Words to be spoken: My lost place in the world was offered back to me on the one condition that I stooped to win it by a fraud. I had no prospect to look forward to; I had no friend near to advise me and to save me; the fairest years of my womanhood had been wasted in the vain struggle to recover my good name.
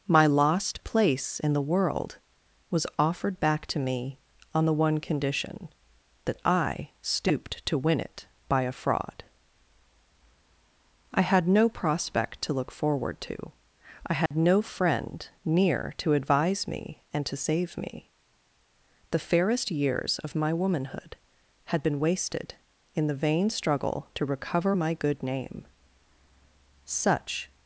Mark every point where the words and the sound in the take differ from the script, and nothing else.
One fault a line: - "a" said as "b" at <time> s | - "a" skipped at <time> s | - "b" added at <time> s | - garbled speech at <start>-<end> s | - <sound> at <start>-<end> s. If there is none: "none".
- dropout at 14.3-14.3 s
- "Such" added at 26.8 s